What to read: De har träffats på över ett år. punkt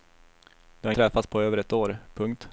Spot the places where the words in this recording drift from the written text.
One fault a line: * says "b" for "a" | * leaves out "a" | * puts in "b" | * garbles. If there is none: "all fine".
all fine